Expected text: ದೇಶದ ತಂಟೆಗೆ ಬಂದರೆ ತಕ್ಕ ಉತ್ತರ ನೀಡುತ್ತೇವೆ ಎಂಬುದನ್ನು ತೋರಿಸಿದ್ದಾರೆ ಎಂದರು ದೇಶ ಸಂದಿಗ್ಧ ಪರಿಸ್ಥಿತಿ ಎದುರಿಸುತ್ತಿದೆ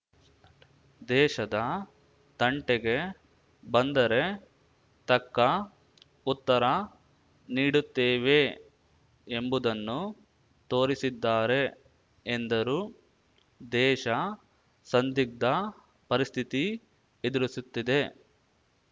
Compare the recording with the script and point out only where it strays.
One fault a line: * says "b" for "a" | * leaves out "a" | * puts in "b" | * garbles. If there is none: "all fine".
all fine